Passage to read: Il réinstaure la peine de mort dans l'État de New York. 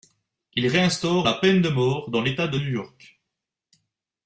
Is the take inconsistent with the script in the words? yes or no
no